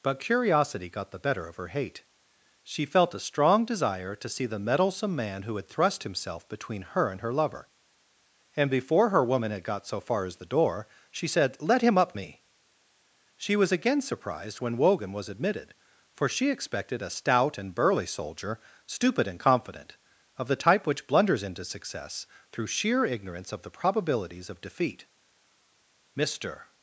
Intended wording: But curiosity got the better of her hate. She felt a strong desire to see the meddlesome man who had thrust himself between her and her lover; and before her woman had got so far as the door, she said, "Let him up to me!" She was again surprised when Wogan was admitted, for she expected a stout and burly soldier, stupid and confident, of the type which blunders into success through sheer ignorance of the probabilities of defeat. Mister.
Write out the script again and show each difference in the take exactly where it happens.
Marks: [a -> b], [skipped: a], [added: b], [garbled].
But curiosity got the better of her hate. She felt a strong desire to see the meddlesome man who had thrust himself between her and her lover; and before her woman had got so far as the door, she said, "Let him up [skipped: to] me!" She was again surprised when Wogan was admitted, for she expected a stout and burly soldier, stupid and confident, of the type which blunders into success through sheer ignorance of the probabilities of defeat. Mister.